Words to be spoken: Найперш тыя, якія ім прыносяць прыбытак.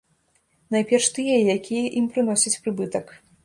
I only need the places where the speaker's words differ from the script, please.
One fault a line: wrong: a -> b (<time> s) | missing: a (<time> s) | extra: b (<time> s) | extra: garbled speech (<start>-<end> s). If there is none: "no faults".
no faults